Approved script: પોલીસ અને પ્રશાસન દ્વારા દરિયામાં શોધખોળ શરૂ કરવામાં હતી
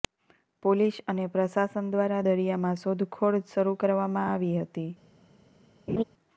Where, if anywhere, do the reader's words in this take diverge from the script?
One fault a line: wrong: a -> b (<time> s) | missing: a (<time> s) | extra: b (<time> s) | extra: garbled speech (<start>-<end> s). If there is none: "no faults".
extra: આવી (4.3 s)